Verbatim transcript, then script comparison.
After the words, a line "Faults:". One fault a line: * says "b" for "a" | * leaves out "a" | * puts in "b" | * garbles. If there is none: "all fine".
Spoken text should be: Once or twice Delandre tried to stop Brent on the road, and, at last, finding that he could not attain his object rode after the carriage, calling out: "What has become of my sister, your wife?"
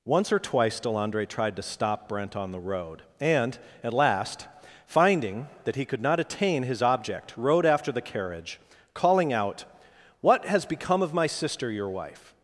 Once or twice Delandre tried to stop Brent on the road, and, at last, finding that he could not attain his object rode after the carriage, calling out: "What has become of my sister, your wife?"
Faults:
all fine